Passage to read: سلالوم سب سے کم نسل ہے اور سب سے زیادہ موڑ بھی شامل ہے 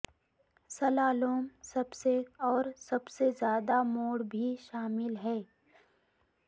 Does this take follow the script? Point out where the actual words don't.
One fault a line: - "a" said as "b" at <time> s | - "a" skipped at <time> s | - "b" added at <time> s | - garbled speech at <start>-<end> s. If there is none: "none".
- "کم نسل ہے" skipped at 2.1 s